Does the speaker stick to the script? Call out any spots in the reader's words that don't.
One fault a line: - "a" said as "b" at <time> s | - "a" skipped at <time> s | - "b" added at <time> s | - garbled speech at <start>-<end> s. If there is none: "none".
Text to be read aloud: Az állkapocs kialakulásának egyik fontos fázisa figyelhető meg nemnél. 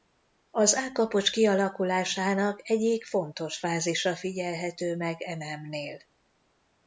- "e" added at 5.2 s